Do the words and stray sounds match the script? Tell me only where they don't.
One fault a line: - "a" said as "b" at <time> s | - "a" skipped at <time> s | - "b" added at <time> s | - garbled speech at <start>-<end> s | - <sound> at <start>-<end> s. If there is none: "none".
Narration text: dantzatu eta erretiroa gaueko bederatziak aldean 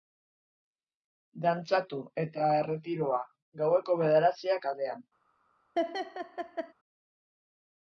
- laugh at 5.8-6.7 s